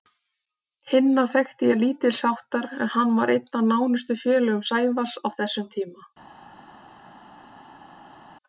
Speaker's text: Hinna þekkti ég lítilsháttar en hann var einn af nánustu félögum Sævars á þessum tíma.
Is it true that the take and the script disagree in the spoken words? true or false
false